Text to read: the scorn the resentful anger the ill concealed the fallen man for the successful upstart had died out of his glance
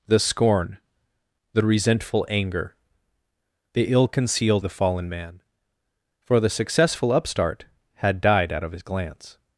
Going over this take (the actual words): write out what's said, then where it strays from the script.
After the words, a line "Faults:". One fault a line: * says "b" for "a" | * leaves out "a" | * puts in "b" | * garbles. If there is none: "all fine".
the scorn the resentful anger the ill concealed the fallen man for the successful upstart had died out of his glance
Faults:
all fine